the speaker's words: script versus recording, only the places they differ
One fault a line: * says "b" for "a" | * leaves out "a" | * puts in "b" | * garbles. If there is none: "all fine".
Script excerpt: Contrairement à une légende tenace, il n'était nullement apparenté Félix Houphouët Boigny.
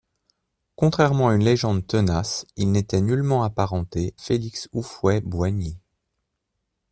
all fine